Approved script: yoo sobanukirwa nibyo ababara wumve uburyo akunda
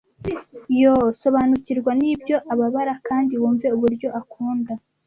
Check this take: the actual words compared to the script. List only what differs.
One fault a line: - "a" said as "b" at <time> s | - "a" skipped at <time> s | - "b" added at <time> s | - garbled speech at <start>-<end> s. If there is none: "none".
- "kandi" added at 3.1 s